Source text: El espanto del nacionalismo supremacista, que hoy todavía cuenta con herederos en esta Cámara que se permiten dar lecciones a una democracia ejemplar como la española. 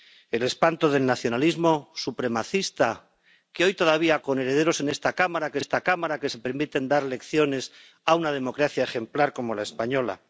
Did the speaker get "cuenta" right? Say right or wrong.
wrong